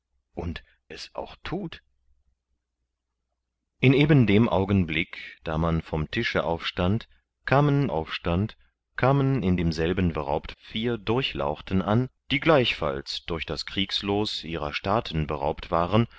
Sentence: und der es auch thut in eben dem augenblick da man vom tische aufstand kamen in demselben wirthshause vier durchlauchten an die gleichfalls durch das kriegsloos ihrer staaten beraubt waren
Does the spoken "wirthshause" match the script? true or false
false